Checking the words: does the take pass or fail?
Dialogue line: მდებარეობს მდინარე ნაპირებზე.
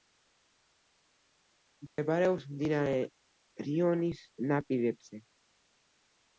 fail